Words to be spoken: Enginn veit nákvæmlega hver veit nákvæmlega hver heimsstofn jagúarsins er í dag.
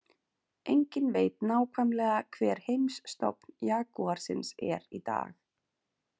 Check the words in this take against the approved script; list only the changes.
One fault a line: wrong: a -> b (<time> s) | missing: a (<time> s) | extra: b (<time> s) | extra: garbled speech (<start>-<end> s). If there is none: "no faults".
missing: veit nákvæmlega hver (2.6 s)